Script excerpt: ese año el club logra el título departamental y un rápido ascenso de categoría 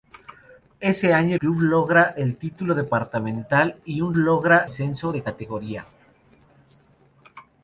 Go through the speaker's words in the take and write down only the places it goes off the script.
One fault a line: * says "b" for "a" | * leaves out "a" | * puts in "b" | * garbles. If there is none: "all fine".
* leaves out "el"
* says "logra" for "rápido"